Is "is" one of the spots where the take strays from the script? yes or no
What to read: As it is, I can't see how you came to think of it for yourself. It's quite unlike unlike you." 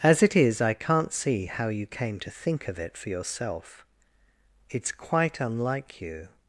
no